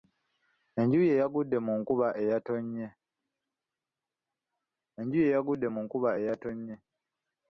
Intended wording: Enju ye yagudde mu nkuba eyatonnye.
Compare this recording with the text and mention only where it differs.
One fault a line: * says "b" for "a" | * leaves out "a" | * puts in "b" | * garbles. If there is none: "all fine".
all fine